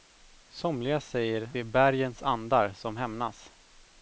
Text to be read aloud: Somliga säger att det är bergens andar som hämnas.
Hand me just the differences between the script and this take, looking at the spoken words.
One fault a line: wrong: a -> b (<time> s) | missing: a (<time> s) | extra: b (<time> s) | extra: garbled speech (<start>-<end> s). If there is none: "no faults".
missing: att (1.5 s)